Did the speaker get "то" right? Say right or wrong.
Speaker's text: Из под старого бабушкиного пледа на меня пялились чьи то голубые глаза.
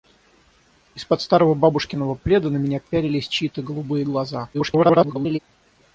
right